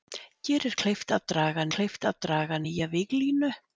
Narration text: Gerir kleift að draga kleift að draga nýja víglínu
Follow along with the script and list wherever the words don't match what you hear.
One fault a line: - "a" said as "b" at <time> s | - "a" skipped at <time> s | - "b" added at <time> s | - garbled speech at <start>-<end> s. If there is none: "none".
none